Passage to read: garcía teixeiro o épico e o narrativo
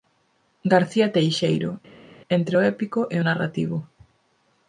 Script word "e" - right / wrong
right